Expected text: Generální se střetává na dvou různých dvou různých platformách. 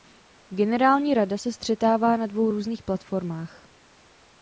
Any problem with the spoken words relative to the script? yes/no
yes